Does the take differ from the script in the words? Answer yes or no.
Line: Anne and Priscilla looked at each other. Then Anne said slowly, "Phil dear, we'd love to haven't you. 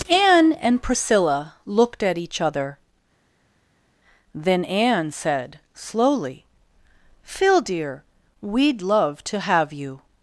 yes